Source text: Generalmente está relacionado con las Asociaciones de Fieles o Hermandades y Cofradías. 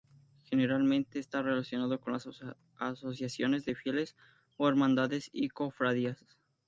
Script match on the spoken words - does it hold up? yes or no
yes